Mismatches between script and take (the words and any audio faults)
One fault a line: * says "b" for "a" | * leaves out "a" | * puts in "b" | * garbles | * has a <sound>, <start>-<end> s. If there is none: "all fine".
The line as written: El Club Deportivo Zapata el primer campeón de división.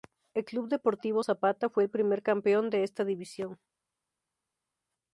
* puts in "fue"
* puts in "esta"